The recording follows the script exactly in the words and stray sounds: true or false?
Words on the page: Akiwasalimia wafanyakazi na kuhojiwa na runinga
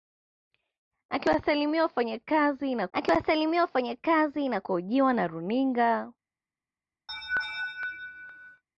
false